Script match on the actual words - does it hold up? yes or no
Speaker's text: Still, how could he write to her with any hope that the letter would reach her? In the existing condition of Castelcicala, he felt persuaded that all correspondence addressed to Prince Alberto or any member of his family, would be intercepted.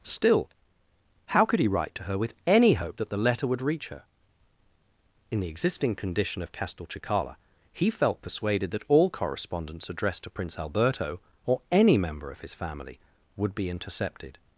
yes